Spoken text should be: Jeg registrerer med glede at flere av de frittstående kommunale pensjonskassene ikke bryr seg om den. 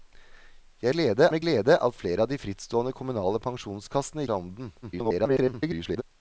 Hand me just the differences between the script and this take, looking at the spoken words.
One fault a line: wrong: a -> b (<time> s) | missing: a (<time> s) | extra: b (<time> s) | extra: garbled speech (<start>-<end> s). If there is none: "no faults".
wrong: registrerer -> glede (0.9 s)
missing: ikke bryr (4.3 s)
extra: garbled speech (4.8-6.0 s)